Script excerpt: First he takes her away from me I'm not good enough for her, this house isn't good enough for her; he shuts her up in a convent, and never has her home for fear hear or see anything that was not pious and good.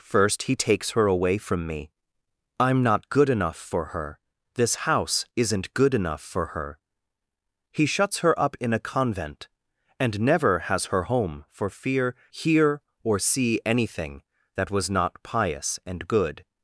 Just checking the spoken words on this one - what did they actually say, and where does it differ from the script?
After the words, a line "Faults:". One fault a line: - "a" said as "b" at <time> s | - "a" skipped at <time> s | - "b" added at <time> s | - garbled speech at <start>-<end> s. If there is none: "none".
First he takes her away from me I'm not good enough for her, this house isn't good enough for her; he shuts her up in a convent, and never has her home for fear hear or see anything that was not pious and good.
Faults:
none